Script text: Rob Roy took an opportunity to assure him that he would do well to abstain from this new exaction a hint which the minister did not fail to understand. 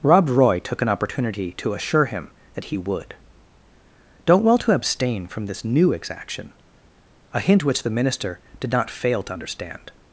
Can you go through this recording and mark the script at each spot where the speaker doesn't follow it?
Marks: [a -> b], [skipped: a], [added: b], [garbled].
Rob Roy took an opportunity to assure him that he would [do -> don't] well to abstain from this new exaction a hint which the minister did not fail to understand.